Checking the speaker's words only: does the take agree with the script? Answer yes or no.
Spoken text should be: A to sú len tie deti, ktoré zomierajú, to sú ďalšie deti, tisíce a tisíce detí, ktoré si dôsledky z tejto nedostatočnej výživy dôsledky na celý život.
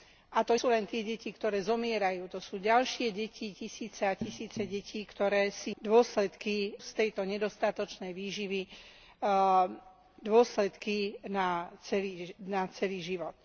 yes